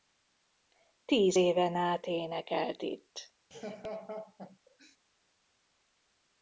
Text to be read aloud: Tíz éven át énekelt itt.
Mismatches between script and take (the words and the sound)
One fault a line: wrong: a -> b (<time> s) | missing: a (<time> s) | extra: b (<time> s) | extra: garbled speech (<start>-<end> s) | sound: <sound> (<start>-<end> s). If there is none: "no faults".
sound: laugh (3.5-5.0 s)